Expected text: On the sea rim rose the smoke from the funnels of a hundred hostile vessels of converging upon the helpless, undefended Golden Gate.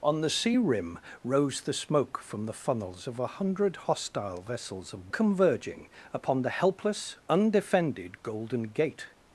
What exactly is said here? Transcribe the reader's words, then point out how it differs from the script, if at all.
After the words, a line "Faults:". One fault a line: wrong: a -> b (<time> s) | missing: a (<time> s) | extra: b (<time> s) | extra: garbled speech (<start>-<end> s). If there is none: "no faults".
On the sea rim rose the smoke from the funnels of a hundred hostile vessels of converging upon the helpless, undefended Golden Gate.
Faults:
no faults